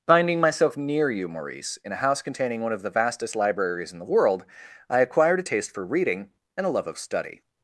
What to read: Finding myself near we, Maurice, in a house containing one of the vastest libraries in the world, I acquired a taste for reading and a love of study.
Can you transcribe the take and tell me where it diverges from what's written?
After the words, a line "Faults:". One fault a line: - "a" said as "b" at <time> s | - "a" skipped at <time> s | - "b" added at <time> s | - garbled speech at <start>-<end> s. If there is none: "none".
Finding myself near you, Maurice, in a house containing one of the vastest libraries in the world, I acquired a taste for reading and a love of study.
Faults:
- "we" said as "you" at 1.1 s